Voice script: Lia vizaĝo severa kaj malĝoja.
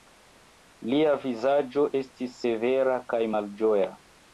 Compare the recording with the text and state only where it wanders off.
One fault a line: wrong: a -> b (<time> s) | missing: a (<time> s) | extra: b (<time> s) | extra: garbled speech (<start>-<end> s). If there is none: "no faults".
extra: estis (2.0 s)